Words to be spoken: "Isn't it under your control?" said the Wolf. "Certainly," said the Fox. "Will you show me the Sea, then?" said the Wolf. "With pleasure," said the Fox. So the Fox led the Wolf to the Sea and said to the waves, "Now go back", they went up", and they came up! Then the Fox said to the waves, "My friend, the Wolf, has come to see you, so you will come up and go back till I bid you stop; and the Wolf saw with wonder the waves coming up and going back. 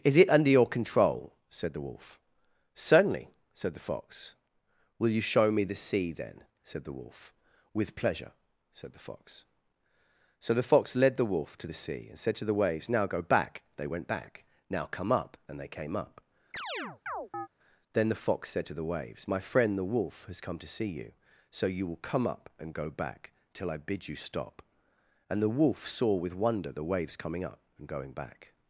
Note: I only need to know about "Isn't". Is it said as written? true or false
false